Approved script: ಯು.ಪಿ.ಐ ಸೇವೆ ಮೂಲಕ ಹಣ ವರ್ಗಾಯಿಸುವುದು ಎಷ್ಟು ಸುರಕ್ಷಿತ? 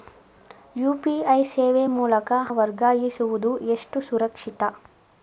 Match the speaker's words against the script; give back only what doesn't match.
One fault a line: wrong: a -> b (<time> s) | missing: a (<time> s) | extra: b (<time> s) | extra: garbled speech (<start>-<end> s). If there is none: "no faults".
missing: ಹಣ (2.3 s)